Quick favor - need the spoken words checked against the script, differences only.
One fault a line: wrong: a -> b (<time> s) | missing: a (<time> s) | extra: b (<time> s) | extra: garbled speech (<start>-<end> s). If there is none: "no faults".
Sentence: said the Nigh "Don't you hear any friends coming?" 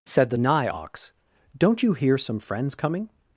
extra: Ox (0.7 s)
wrong: any -> some (2.2 s)